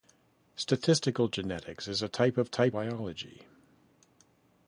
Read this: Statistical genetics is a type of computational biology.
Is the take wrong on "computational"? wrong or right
wrong